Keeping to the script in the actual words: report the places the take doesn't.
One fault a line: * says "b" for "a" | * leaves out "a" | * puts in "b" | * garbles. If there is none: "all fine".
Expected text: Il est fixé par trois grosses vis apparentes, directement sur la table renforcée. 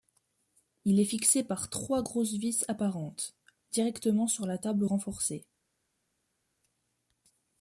all fine